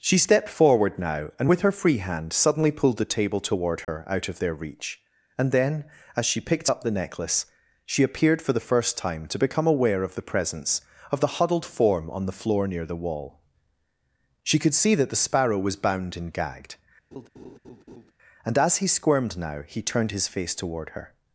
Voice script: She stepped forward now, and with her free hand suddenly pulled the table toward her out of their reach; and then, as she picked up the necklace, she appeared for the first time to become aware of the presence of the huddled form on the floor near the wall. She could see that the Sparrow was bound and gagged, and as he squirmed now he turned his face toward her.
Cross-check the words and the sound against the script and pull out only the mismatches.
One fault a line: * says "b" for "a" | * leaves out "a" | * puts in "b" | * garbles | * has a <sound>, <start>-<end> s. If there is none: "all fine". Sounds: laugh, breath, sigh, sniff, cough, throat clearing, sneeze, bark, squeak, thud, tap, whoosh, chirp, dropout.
* has a dropout, 3.8-3.9 s
* has a laugh, 17.1-18.1 s